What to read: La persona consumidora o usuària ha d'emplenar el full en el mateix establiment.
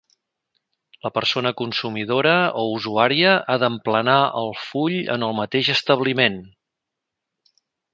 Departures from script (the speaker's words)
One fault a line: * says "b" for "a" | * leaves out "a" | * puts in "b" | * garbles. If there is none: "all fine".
all fine